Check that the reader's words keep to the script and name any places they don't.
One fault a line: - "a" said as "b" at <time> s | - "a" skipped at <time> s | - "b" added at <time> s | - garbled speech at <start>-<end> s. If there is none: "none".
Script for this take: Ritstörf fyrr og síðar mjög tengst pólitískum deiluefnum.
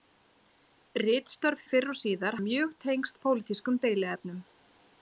none